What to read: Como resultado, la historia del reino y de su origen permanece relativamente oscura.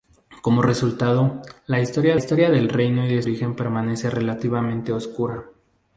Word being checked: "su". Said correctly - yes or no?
no